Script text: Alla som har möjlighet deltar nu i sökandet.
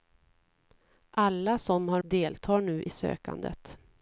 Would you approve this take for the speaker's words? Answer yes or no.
no